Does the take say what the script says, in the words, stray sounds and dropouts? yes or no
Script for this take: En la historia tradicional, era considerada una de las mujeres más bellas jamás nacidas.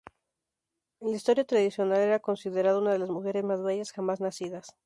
yes